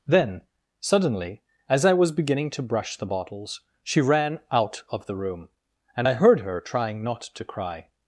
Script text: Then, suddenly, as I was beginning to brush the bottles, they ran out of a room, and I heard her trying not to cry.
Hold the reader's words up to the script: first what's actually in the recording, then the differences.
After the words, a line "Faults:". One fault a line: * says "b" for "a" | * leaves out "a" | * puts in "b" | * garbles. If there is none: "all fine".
Then, suddenly, as I was beginning to brush the bottles, she ran out of the room, and I heard her trying not to cry.
Faults:
* says "she" for "they"
* says "the" for "a"